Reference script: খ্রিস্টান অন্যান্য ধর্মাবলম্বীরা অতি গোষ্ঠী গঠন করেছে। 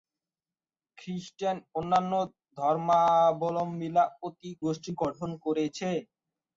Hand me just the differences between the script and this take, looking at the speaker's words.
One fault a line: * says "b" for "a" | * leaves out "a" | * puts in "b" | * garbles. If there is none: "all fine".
all fine